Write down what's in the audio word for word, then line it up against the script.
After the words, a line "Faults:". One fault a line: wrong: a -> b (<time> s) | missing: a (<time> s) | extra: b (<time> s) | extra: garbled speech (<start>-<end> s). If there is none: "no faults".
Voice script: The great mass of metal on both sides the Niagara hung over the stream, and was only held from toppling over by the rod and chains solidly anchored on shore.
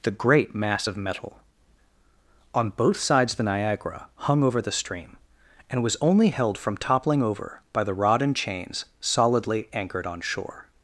The great mass of metal on both sides the Niagara hung over the stream, and was only held from toppling over by the rod and chains solidly anchored on shore.
Faults:
no faults